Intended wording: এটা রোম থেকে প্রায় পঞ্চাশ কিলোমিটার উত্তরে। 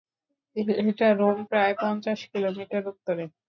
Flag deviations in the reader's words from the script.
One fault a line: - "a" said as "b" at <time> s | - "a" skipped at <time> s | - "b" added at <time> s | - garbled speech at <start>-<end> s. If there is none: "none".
- "থেকে" skipped at 1.4 s